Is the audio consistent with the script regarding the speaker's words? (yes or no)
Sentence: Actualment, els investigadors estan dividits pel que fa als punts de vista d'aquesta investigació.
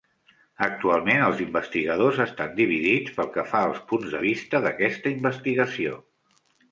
yes